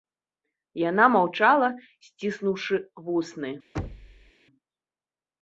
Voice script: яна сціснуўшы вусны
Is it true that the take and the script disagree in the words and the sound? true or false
true